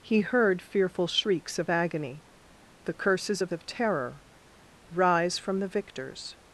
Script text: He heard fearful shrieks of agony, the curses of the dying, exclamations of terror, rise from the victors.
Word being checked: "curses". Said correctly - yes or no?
yes